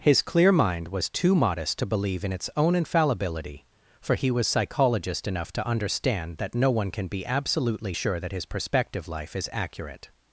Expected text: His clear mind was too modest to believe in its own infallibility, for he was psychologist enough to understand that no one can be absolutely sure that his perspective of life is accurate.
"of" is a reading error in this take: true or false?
true